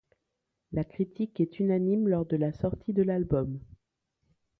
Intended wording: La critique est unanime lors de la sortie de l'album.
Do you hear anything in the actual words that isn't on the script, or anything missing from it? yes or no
no